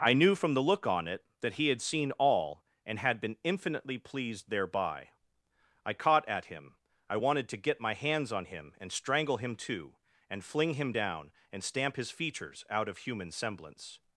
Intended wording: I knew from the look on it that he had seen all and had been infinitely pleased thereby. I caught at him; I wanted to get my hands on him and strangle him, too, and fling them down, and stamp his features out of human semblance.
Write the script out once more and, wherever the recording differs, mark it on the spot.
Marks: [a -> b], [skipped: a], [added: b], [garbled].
I knew from the look on it that he had seen all and had been infinitely pleased thereby. I caught at him; I wanted to get my hands on him and strangle him, too, and fling [them -> him] down, and stamp his features out of human semblance.